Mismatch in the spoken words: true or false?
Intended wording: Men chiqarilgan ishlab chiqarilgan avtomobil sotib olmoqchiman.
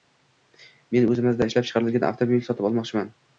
true